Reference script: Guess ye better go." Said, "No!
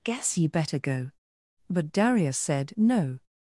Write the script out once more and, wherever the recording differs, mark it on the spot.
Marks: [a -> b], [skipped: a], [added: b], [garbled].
Guess ye better go." [added: But Darius] Said, "No!